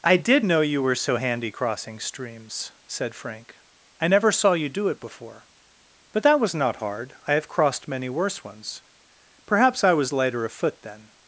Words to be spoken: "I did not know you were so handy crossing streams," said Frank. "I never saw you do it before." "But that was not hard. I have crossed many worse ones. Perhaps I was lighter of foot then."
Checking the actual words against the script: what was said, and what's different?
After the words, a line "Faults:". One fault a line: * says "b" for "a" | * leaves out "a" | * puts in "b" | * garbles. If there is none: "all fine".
"I did know you were so handy crossing streams," said Frank. "I never saw you do it before." "But that was not hard. I have crossed many worse ones. Perhaps I was lighter of foot then."
Faults:
* leaves out "not"